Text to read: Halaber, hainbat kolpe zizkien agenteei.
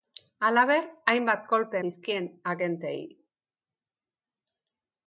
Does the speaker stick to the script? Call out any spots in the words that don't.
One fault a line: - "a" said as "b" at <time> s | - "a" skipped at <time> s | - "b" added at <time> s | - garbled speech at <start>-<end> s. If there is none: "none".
none